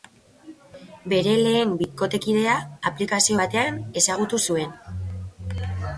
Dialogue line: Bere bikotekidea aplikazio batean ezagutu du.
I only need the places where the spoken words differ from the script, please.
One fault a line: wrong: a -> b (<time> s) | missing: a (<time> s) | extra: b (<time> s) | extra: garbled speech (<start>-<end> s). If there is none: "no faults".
extra: lehen (1.4 s)
wrong: du -> zuen (4.5 s)